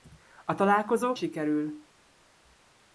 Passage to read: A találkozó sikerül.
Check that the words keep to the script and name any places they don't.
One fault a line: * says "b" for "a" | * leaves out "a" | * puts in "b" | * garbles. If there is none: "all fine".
all fine